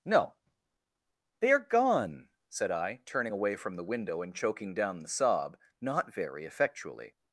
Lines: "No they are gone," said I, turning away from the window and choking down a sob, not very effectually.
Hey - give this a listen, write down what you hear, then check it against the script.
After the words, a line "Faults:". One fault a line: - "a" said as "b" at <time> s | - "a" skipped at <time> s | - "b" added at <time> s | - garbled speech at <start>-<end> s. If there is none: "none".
"No they are gone," said I, turning away from the window and choking down the sob, not very effectually.
Faults:
- "a" said as "the" at 5.0 s